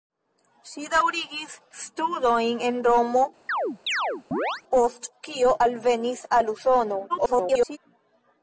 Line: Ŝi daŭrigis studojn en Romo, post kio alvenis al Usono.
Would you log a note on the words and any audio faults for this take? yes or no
yes